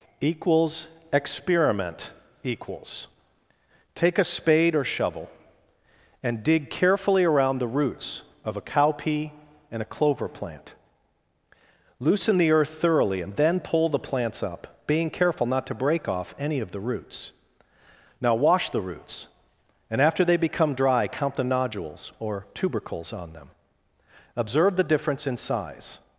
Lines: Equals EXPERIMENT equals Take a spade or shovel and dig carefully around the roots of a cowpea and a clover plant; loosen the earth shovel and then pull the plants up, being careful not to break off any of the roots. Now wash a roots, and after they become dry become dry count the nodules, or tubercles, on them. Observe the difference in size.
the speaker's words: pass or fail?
fail